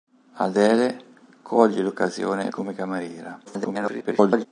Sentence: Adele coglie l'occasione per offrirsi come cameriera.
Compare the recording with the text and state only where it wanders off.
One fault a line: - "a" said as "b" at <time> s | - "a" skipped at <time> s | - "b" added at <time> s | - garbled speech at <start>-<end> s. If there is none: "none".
- "per offrirsi" skipped at 2.5 s
- garbled speech at 3.5-4.5 s